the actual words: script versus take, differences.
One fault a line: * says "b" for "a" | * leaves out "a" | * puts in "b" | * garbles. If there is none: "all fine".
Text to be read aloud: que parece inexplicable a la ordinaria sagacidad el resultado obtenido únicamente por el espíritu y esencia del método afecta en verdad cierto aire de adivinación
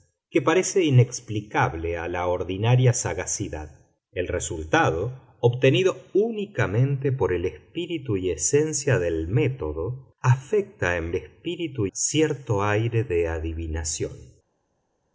* says "espíritu" for "verdad"